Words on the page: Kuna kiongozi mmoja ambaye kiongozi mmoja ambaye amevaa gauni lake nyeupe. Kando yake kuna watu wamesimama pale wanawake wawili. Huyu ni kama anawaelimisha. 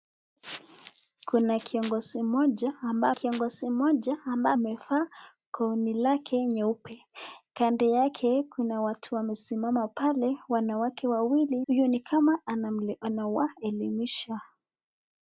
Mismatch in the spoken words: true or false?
false